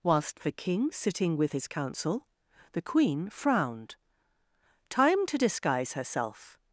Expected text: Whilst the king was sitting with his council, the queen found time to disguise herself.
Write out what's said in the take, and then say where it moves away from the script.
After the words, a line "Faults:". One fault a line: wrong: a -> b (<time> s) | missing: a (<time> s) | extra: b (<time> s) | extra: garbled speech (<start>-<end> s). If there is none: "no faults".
Whilst the king sitting with his council, the queen frowned time to disguise herself.
Faults:
missing: was (0.9 s)
wrong: found -> frowned (3.3 s)